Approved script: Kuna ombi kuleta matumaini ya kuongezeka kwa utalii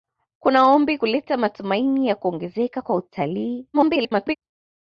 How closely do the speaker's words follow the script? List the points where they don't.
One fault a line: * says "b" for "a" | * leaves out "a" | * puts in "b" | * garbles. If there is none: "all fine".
* garbles